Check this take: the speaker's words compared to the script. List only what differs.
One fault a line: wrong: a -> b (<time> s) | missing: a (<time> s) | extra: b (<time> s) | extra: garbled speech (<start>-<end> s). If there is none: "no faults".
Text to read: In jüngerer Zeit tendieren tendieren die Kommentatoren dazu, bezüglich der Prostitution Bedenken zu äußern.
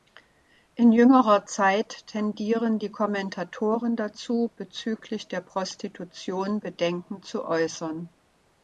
missing: tendieren (2.8 s)